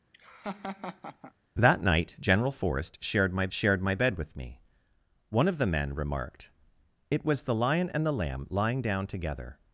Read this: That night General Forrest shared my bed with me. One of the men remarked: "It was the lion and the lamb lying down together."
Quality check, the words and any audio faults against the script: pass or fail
fail